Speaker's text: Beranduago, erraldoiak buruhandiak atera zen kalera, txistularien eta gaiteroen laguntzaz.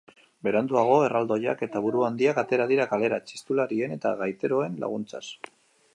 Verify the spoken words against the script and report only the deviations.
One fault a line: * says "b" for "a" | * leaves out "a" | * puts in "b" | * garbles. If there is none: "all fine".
* puts in "eta"
* says "dira" for "zen"